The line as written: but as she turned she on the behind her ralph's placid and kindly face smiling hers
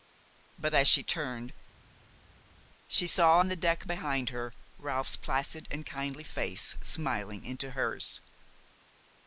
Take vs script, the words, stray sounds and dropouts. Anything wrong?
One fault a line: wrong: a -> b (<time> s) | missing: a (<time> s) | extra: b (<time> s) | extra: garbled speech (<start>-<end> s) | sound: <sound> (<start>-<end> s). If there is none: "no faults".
extra: saw (3.1 s)
extra: deck (3.5 s)
extra: into (7.5 s)